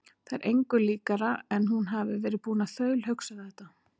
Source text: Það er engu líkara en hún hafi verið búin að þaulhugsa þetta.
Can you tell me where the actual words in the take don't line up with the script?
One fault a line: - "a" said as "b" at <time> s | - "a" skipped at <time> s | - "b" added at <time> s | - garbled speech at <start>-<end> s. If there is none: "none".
none